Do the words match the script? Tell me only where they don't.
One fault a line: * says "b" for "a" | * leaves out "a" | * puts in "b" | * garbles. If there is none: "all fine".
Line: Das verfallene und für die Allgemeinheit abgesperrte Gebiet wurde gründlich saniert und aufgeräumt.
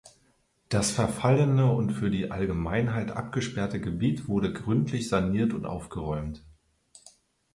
all fine